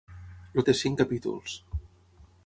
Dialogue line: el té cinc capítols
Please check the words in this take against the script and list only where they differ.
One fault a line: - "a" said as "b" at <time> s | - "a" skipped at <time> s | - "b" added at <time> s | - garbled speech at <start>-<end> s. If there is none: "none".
none